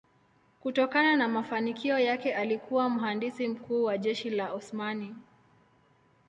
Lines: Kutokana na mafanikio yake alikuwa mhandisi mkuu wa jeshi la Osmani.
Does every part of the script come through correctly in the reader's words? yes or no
yes